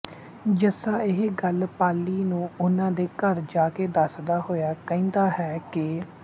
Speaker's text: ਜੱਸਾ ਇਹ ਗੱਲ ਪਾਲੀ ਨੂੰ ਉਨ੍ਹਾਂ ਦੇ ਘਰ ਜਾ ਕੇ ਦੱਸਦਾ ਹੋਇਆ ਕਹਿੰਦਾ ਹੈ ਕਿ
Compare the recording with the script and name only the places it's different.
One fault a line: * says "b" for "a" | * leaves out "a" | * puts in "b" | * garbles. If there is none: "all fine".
all fine